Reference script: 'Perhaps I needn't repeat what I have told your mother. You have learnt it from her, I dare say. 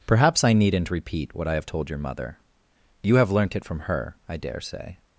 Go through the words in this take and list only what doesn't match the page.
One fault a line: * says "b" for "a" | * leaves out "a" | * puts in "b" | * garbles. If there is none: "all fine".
all fine